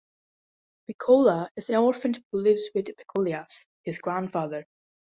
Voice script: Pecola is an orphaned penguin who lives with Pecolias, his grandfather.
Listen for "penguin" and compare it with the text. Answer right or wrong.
wrong